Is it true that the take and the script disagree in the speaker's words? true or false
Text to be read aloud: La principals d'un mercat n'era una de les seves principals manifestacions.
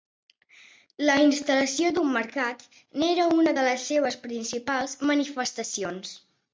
true